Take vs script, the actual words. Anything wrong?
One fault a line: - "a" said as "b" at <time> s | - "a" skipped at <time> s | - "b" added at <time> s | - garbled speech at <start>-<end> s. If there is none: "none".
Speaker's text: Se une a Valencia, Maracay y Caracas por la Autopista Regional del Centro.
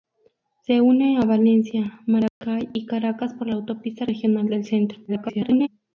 - garbled speech at 5.1-5.7 s